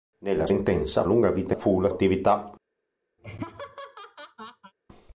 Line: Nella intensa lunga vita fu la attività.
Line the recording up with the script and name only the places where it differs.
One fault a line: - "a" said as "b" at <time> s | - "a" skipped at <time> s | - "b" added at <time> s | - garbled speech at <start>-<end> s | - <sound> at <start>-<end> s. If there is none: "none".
- laugh at 3.2-4.7 s